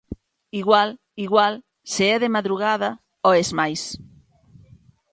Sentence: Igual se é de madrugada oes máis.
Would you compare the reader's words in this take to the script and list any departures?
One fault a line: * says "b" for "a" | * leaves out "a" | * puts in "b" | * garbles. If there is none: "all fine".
* puts in "igual"